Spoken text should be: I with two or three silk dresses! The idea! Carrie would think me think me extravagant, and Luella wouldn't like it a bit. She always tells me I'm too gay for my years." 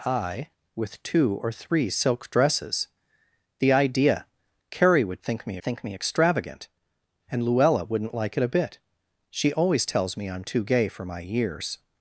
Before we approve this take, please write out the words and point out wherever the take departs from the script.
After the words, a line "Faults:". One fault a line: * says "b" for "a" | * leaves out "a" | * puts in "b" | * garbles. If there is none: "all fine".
I with two or three silk dresses! The idea! Carrie would think me think me extravagant, and Luella wouldn't like it a bit. She always tells me I'm too gay for my years."
Faults:
all fine